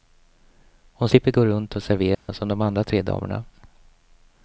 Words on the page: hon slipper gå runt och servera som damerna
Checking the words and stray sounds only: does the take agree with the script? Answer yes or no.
no